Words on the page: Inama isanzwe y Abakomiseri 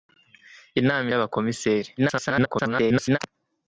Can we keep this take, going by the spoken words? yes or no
no